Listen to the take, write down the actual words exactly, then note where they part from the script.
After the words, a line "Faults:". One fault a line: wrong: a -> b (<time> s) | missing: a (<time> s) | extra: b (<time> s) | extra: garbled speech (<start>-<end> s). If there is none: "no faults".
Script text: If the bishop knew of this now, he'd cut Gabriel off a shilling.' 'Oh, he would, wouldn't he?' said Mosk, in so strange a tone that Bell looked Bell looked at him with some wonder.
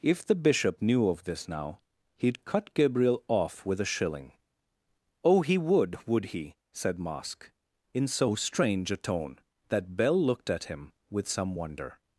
If the bishop knew of this now, he'd cut Gabriel off with a shilling.' 'Oh, he would, would he?' said Mosk, in so strange a tone that Bell looked at him with some wonder.
Faults:
extra: with (3.6 s)
wrong: wouldn't -> would (6.1 s)
missing: Bell looked (10.5 s)